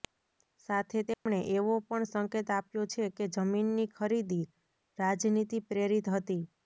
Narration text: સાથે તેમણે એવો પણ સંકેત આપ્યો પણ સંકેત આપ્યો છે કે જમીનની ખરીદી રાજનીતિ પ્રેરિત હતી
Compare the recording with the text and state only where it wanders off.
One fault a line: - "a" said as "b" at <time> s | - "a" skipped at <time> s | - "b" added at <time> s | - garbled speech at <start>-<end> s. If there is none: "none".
- "પણ સંકેત આપ્યો" skipped at 2.8 s